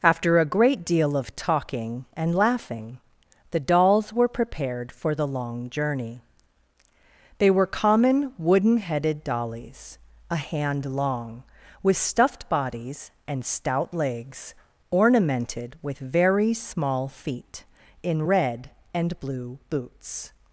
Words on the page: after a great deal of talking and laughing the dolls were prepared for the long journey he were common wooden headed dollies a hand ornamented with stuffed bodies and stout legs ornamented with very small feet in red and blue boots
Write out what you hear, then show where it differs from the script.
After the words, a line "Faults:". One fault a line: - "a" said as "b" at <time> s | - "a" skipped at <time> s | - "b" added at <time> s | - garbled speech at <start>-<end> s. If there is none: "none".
after a great deal of talking and laughing the dolls were prepared for the long journey they were common wooden headed dollies a hand long with stuffed bodies and stout legs ornamented with very small feet in red and blue boots
Faults:
- "he" said as "they" at 7.4 s
- "ornamented" said as "long" at 10.9 s